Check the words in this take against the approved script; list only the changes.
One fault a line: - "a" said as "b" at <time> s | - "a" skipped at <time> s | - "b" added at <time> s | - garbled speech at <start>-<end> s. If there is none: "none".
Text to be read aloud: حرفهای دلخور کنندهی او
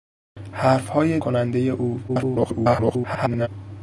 - "دلخور" skipped at 1.2 s
- garbled speech at 2.1-3.5 s